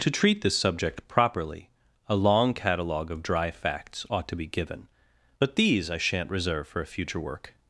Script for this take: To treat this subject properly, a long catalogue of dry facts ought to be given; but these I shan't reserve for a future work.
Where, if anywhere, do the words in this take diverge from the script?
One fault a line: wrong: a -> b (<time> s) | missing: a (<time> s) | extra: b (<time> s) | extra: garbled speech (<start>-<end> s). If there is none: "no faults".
no faults